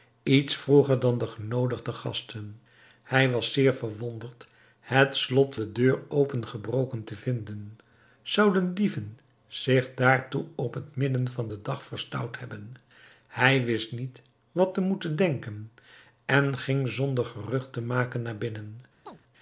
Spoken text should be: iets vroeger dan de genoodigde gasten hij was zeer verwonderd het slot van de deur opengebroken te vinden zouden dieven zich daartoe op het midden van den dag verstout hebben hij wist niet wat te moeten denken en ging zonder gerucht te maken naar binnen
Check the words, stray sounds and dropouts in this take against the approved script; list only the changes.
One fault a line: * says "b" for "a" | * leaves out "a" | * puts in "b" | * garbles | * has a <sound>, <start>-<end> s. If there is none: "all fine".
* leaves out "van"
* has a chirp, 19.1-19.2 s